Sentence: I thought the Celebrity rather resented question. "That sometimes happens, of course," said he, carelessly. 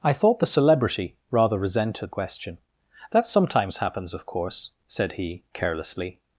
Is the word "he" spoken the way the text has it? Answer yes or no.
yes